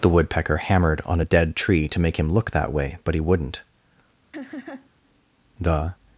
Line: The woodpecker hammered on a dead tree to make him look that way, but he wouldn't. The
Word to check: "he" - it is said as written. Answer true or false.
true